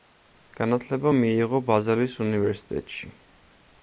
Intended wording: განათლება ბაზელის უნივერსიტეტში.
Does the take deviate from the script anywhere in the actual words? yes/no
yes